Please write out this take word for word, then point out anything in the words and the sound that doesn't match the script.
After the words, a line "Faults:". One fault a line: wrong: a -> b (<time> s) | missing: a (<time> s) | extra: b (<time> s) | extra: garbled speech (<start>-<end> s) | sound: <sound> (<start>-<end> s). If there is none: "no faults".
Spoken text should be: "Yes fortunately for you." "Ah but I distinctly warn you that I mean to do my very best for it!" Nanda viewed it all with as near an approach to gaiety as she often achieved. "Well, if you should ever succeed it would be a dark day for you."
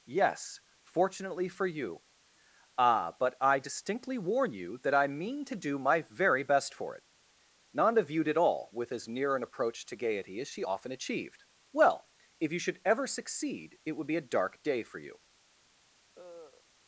"Yes fortunately for you." "Ah but I distinctly warn you that I mean to do my very best for it!" Nanda viewed it all with as near an approach to gaiety as she often achieved. "Well, if you should ever succeed it would be a dark day for you."
Faults:
sound: cough (16.1-16.6 s)